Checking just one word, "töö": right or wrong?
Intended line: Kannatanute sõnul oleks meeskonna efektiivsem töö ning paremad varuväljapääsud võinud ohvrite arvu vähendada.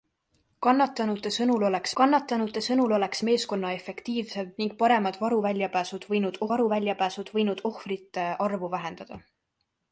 wrong